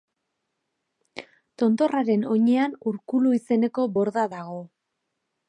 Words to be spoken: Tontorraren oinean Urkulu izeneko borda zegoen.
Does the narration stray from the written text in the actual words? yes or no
yes